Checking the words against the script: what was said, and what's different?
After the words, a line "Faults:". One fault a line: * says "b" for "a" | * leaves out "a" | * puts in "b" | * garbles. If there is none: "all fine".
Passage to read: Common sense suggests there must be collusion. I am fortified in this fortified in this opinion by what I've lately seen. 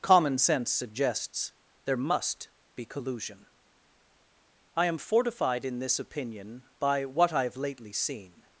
Common sense suggests there must be collusion. I am fortified in this opinion by what I've lately seen.
Faults:
* leaves out "fortified in this"